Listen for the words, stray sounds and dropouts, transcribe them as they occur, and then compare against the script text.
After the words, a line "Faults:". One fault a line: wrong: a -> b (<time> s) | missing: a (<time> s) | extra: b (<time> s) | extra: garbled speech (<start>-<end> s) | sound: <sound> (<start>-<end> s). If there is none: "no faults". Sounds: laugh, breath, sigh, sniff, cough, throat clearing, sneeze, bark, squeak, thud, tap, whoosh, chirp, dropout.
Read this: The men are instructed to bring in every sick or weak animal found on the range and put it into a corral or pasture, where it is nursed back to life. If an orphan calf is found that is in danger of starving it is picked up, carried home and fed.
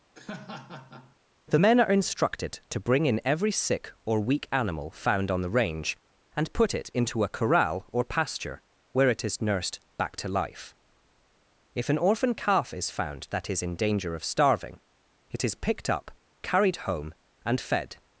The men are instructed to bring in every sick or weak animal found on the range and put it into a corral or pasture, where it is nursed back to life. If an orphan calf is found that is in danger of starving it is picked up, carried home and fed.
Faults:
sound: laugh (0.1-1.2 s)